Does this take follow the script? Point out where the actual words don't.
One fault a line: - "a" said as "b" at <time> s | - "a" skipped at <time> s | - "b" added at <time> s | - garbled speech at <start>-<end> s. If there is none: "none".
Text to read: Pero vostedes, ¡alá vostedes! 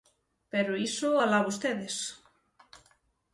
- "vostedes" said as "iso" at 0.9 s